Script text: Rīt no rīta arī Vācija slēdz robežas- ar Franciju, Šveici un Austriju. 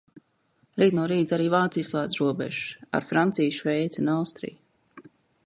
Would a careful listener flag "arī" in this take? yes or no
no